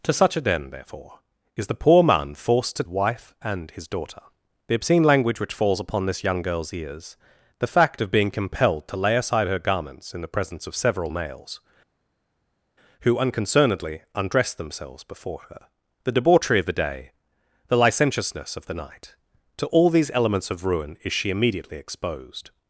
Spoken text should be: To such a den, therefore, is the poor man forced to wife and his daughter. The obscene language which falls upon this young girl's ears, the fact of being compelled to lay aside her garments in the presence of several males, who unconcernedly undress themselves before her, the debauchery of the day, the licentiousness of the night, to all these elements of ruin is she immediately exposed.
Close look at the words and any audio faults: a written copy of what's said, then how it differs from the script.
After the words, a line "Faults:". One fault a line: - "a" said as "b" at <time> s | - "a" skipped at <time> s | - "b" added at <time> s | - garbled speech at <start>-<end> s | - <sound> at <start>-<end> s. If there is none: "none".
To such a den, therefore, is the poor man forced to wife and his daughter. The obscene language which falls upon this young girl's ears, the fact of being compelled to lay aside her garments in the presence of several males, who unconcernedly undress themselves before her, the debauchery of the day, the licentiousness of the night, to all these elements of ruin is she immediately exposed.
Faults:
none